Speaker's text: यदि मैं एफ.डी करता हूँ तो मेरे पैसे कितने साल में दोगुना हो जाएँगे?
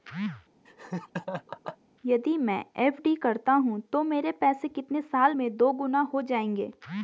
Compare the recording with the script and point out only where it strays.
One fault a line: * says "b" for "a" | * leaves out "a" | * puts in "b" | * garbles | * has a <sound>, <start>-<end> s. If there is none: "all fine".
* has a laugh, 0.6-1.8 s